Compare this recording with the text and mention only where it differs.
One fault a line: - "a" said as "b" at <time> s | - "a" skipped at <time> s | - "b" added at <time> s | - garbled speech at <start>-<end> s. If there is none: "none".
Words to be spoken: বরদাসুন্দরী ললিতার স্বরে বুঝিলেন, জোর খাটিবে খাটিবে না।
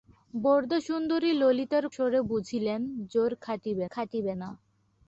none